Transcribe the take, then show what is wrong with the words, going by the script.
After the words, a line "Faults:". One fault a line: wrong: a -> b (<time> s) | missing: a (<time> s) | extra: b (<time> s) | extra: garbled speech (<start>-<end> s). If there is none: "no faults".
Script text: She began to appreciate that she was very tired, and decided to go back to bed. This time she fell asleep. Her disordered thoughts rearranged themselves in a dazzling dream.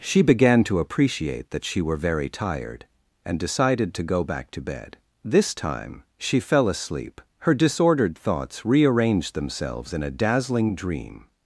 She began to appreciate that she were very tired, and decided to go back to bed. This time she fell asleep. Her disordered thoughts rearranged themselves in a dazzling dream.
Faults:
wrong: was -> were (1.8 s)